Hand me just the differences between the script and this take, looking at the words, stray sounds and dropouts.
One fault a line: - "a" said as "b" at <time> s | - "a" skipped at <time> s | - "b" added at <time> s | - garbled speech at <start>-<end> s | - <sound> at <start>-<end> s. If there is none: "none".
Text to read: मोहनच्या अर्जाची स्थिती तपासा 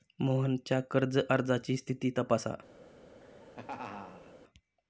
- "कर्ज" added at 0.9 s
- laugh at 3.2-4.3 s